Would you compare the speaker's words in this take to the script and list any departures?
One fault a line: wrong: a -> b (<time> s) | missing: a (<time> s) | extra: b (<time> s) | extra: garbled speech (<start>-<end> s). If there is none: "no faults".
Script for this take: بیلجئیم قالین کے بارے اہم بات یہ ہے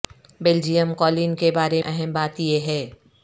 no faults